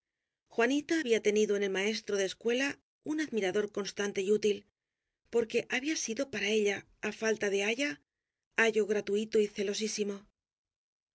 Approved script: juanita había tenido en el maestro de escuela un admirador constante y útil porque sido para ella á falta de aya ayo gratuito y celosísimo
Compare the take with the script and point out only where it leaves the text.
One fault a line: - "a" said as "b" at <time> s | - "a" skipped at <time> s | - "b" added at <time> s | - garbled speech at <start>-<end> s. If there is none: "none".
- "había" added at 5.7 s